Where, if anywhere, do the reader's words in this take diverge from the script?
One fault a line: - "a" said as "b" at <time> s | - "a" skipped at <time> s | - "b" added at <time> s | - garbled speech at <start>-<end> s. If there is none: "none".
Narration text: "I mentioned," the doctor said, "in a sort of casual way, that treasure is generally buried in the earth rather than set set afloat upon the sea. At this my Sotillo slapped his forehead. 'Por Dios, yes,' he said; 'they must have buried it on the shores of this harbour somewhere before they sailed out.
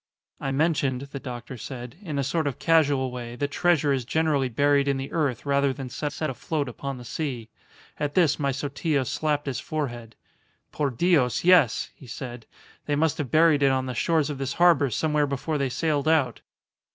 none